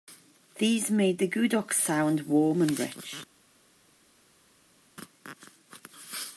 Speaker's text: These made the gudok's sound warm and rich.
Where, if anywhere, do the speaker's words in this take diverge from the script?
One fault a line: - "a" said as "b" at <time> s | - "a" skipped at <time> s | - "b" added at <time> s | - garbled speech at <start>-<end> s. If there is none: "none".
none